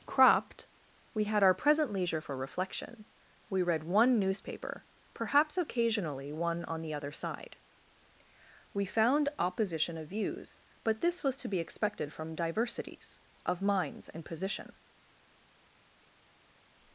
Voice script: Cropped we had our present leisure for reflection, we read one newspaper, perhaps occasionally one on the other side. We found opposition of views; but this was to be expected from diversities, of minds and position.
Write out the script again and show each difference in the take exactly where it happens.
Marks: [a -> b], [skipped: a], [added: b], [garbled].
Cropped we had our present leisure for reflection, we read one newspaper, perhaps occasionally one on the other side. We found opposition of views; but this was to be expected from diversities, of minds and position.